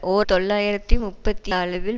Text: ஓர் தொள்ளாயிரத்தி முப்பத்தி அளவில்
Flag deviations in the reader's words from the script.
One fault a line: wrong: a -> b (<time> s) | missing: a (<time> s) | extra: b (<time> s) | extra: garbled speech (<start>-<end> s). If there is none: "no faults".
no faults